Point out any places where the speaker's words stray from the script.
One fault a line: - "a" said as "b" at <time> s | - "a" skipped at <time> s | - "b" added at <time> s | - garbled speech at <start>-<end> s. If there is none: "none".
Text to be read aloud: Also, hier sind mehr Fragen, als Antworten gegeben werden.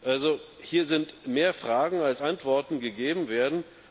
none